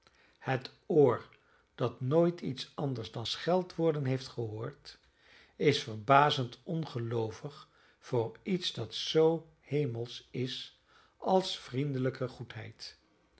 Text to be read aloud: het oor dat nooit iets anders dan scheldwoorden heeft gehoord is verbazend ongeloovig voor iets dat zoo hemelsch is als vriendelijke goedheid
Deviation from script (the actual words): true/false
false